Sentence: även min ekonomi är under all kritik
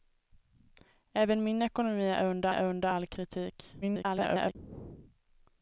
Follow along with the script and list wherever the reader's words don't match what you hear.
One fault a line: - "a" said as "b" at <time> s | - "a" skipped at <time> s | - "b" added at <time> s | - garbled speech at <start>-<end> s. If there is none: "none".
- "är under" added at 2.5 s
- garbled speech at 3.8-4.6 s